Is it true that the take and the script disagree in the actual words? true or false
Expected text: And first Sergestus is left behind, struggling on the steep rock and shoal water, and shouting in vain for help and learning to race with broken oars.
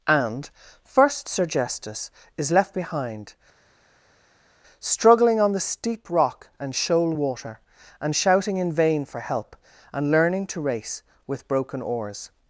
false